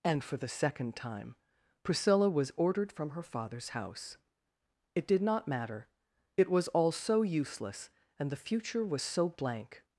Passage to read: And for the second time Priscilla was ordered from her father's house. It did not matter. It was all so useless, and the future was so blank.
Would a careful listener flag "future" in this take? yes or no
no